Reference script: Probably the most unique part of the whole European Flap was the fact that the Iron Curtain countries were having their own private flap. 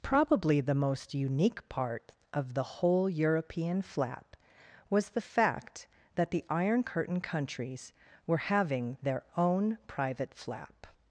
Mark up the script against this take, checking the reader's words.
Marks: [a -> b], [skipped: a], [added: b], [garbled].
Probably the most unique part of the whole European Flap was the fact that the Iron Curtain countries were having their own private flap.